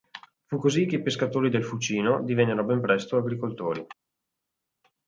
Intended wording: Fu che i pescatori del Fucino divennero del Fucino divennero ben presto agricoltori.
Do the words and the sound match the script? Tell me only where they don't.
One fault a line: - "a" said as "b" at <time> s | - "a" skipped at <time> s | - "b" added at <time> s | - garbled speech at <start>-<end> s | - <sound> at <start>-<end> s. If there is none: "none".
- "così" added at 0.6 s
- "del Fucino divennero" skipped at 2.6 s